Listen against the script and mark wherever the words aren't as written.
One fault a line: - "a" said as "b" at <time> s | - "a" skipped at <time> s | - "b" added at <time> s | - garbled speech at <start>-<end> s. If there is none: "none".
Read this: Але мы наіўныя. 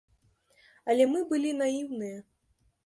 - "былі" added at 1.3 s